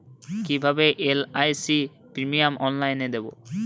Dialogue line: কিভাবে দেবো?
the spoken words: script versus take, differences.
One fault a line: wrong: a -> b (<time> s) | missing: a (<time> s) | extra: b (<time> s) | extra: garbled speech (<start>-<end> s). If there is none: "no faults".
extra: এল.আই.সি প্রিমিয়াম অনলাইনে (1.1 s)